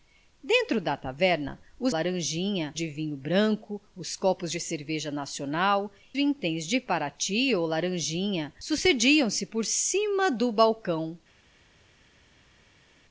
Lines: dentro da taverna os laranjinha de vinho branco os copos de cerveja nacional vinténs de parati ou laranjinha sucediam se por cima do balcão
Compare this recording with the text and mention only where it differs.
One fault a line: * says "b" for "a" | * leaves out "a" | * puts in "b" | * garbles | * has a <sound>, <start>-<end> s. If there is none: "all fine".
all fine